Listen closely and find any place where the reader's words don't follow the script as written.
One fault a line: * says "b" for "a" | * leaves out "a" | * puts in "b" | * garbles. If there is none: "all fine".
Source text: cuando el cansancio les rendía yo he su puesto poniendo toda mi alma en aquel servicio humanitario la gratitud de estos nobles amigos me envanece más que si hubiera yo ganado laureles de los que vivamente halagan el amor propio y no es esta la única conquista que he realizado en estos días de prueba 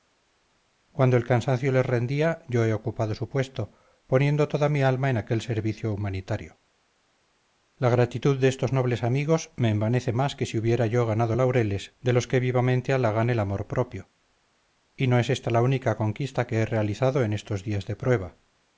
* puts in "ocupado"